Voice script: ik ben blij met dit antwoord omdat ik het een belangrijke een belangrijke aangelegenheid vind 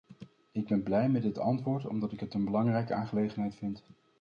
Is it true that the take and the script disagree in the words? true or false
true